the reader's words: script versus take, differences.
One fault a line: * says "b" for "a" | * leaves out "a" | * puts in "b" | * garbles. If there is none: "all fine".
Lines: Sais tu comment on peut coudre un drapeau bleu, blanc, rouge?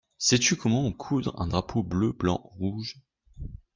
* leaves out "peut"